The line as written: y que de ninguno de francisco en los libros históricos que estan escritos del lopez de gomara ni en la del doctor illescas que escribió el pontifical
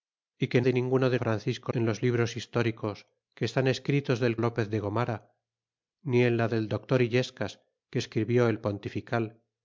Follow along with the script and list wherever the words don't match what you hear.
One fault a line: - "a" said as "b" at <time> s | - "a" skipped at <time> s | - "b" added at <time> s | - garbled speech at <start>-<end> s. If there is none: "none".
none